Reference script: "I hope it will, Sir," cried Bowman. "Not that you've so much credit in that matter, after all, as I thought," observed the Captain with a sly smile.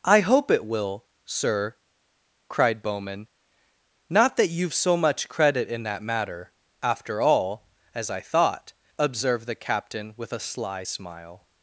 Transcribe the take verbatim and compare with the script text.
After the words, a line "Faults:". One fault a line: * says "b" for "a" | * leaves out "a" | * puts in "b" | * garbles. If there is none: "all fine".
"I hope it will, Sir," cried Bowman. "Not that you've so much credit in that matter, after all, as I thought," observed the Captain with a sly smile.
Faults:
all fine